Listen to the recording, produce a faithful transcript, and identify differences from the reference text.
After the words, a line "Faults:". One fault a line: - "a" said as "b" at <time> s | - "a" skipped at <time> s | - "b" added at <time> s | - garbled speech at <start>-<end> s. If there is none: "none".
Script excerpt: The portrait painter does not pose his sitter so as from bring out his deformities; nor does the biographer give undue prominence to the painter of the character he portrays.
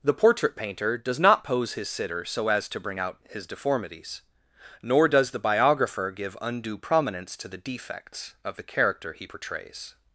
The portrait painter does not pose his sitter so as to bring out his deformities; nor does the biographer give undue prominence to the defects of the character he portrays.
Faults:
- "from" said as "to" at 2.7 s
- "painter" said as "defects" at 7.6 s